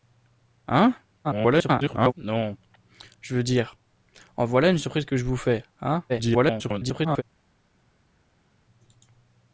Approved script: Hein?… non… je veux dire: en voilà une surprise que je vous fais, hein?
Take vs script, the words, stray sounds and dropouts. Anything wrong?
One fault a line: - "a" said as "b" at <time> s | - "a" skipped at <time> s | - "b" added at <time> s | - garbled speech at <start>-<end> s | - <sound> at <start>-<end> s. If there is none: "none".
- garbled speech at 1.2-2.1 s
- garbled speech at 6.1-7.2 s